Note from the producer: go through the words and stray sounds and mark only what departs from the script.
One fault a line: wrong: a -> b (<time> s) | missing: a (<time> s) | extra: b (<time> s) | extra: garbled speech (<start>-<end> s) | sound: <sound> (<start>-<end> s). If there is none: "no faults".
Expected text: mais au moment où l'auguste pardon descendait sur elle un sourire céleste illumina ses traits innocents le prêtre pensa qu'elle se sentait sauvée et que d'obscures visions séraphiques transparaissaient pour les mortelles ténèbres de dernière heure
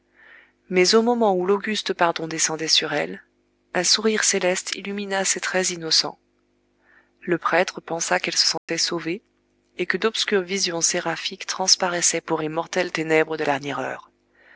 sound: dropout (8.6-8.7 s)